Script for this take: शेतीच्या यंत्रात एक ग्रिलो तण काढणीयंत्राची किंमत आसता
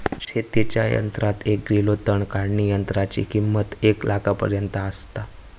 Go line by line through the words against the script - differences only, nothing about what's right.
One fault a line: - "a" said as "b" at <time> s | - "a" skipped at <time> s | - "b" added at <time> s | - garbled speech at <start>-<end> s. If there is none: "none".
- "एक लाखापर्यंत" added at 3.8 s